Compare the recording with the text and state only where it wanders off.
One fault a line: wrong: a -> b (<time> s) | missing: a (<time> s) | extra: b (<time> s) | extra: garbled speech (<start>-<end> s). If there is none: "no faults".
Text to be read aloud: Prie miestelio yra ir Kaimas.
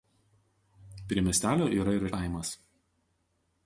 no faults